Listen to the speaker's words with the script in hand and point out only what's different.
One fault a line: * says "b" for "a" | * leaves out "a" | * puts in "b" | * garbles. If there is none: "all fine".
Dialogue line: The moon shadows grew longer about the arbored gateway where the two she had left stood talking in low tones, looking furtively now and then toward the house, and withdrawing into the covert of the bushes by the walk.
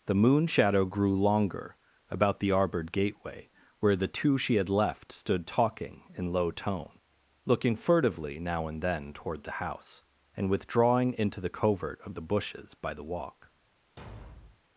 * says "shadow" for "shadows"
* says "tone" for "tones"